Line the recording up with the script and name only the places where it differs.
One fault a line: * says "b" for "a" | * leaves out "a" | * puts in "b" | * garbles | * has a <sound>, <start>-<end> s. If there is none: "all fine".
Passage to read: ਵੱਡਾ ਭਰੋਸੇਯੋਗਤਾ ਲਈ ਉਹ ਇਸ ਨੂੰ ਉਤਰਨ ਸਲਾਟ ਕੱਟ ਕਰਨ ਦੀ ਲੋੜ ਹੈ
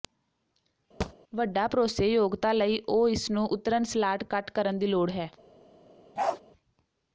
* has a thud, 1.0-1.1 s
* has a bark, 6.2-6.4 s